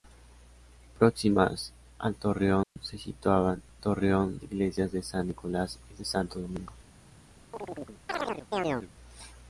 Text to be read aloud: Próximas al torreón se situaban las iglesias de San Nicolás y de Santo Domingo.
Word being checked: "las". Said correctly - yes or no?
no